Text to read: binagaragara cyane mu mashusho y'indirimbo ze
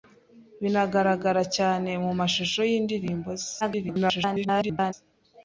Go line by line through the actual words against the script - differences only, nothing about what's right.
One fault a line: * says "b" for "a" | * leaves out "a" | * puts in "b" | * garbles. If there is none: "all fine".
* garbles